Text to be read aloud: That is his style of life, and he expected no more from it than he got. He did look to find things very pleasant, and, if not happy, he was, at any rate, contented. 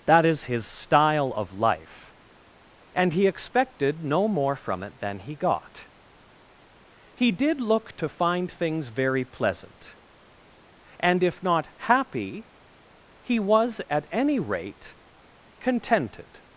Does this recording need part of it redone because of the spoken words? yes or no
no